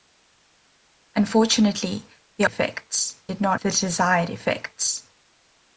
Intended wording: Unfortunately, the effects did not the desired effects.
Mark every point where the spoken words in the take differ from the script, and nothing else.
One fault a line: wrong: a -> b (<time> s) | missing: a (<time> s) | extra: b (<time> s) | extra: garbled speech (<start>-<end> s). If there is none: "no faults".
no faults